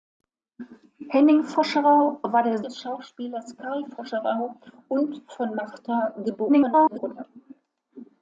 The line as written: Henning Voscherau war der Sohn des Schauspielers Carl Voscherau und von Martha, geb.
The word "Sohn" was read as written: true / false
false